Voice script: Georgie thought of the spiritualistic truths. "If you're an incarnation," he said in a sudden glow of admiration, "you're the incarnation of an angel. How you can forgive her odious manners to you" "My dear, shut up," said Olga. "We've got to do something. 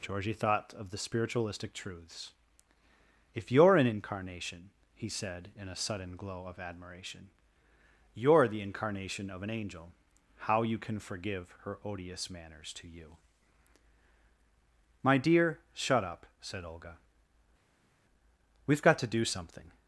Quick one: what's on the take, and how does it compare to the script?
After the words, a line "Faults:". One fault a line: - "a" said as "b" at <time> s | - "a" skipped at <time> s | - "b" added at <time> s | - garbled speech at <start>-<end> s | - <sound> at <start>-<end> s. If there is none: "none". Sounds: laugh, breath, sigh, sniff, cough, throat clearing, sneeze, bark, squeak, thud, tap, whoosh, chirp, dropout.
Georgie thought of the spiritualistic truths. "If you're an incarnation," he said in a sudden glow of admiration, "you're the incarnation of an angel. How you can forgive her odious manners to you" "My dear, shut up," said Olga. "We've got to do something.
Faults:
none